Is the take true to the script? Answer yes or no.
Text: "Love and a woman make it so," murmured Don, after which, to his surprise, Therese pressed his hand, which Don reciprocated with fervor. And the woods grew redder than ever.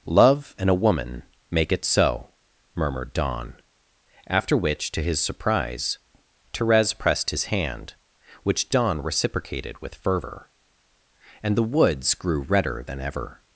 yes